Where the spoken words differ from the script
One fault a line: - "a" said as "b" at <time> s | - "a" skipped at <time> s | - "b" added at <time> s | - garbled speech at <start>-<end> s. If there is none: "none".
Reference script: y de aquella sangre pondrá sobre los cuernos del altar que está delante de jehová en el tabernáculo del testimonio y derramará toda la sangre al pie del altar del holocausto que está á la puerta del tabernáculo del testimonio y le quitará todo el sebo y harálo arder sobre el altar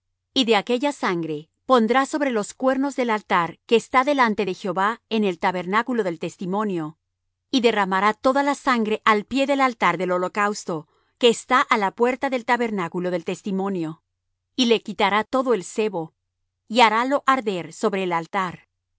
none